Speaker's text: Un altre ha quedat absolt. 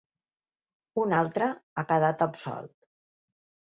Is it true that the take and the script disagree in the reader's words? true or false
false